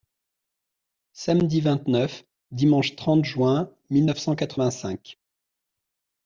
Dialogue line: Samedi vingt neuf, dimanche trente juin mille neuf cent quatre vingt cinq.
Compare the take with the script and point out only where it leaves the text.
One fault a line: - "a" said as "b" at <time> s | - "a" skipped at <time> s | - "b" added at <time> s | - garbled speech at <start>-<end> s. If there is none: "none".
none